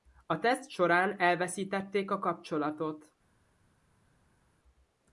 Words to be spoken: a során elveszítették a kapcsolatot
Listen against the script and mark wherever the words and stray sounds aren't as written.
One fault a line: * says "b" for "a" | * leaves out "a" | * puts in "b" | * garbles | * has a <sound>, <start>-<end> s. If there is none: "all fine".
* puts in "teszt"